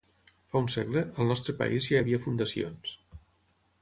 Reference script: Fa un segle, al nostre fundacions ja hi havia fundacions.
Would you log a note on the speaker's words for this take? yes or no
yes